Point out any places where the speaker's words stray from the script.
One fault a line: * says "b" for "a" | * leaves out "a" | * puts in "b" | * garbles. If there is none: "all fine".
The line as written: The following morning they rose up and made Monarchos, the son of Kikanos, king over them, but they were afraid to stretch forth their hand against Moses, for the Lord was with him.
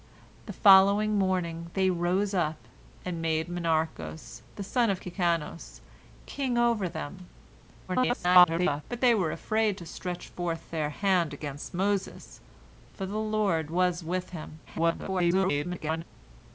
* garbles
* garbles